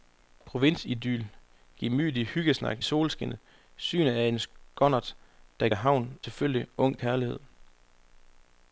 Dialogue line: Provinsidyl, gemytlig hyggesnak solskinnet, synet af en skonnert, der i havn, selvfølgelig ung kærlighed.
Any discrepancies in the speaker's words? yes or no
no